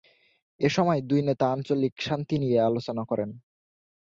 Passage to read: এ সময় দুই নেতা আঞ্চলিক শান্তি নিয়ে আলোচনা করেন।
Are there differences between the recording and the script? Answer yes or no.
no